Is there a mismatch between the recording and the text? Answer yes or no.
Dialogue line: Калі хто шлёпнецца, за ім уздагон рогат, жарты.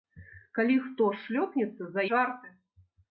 yes